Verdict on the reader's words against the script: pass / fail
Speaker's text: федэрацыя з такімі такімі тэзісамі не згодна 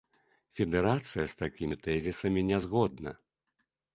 fail